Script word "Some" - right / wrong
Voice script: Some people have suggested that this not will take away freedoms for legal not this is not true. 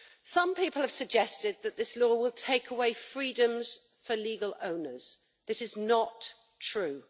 right